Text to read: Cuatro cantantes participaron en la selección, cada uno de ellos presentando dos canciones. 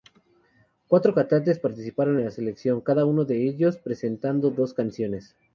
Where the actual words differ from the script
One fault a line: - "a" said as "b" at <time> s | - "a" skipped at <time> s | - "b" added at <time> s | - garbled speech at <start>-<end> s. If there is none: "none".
none